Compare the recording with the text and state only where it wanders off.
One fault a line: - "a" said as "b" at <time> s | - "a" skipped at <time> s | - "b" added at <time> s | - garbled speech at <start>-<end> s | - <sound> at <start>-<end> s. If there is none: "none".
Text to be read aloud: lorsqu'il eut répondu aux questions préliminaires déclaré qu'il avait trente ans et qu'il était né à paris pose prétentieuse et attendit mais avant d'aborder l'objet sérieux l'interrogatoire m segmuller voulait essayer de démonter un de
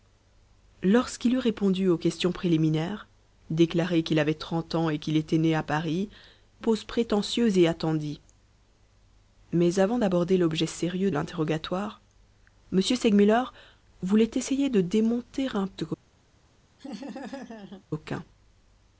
- laugh at 16.8-17.8 s